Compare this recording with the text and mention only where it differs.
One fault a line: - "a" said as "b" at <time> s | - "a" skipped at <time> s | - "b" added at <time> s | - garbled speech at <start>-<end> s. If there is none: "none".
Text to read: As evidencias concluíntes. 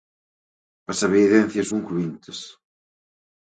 none